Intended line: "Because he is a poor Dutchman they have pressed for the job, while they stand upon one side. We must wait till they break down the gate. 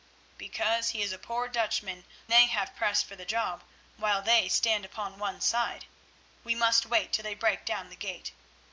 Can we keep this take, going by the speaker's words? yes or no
yes